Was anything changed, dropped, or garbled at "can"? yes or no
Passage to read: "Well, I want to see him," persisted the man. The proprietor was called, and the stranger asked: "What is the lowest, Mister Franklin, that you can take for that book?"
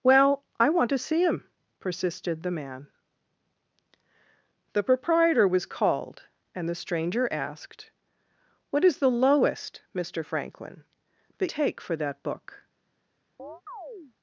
yes